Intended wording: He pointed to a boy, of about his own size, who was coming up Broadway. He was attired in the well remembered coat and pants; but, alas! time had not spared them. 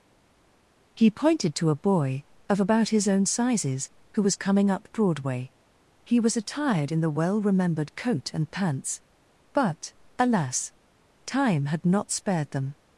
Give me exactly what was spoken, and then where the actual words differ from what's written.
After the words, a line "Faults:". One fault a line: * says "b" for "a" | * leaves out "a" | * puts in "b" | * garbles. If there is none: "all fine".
He pointed to a boy, of about his own sizes, who was coming up Broadway. He was attired in the well remembered coat and pants; but, alas! time had not spared them.
Faults:
* says "sizes" for "size"